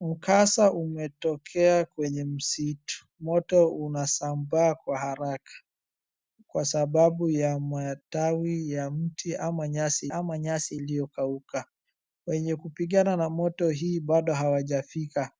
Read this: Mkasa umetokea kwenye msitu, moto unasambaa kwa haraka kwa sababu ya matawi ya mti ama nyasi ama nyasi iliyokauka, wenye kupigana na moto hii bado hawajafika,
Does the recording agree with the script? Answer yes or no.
yes